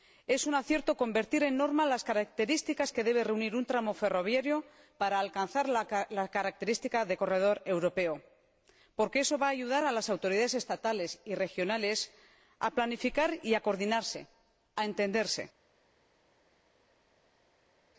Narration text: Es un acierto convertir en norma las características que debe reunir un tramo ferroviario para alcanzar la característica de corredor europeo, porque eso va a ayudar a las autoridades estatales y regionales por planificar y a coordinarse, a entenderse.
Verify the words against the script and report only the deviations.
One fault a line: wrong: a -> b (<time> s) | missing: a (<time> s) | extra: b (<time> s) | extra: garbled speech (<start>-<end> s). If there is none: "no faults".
wrong: por -> a (12.6 s)